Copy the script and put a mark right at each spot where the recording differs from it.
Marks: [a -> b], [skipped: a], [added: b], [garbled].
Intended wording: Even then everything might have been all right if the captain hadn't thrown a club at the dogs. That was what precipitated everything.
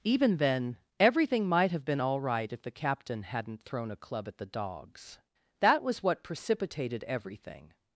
Even then everything might have been all right if the captain hadn't thrown a club at the dogs. That was what precipitated everything.